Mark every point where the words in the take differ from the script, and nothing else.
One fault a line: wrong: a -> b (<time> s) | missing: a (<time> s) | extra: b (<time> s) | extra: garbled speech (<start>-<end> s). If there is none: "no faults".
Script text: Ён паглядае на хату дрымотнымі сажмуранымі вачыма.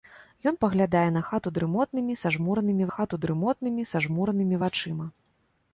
extra: хату дрымотнымі сажмуранымі (2.9 s)